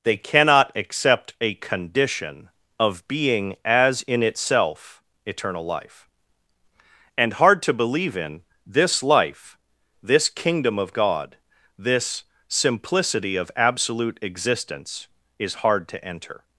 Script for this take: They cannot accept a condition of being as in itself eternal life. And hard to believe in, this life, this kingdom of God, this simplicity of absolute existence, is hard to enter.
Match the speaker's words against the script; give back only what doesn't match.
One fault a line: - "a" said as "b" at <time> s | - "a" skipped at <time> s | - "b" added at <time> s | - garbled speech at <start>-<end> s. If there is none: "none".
none